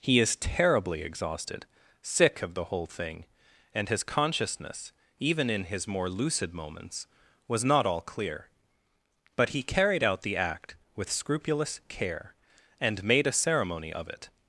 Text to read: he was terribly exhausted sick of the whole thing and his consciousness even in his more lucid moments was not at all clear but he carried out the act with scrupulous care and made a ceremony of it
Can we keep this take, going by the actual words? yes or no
no